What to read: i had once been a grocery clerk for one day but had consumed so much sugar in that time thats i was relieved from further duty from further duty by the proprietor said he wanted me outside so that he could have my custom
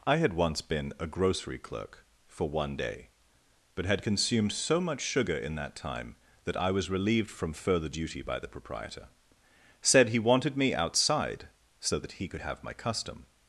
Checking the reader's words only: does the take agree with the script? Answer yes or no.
no